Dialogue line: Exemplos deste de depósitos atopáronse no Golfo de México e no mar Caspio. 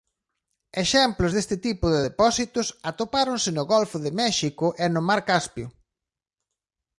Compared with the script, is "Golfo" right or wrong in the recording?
right